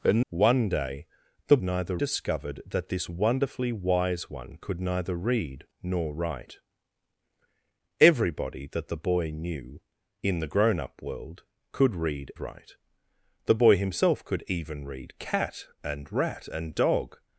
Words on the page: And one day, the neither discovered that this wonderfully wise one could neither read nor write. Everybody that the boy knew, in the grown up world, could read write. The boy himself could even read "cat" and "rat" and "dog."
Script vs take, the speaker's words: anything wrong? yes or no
no